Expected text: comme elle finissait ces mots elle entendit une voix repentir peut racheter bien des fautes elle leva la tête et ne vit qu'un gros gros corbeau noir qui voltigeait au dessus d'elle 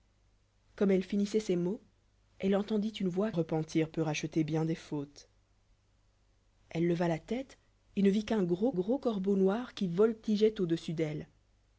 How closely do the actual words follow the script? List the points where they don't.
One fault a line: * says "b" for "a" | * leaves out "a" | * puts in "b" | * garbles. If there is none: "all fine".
all fine